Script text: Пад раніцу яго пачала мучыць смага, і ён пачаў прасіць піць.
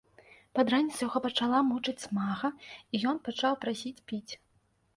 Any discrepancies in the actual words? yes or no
no